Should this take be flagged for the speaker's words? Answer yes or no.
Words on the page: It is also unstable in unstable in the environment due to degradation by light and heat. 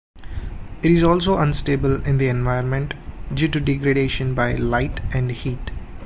yes